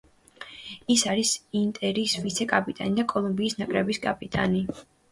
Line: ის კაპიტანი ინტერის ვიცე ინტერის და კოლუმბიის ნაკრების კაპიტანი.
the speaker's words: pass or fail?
fail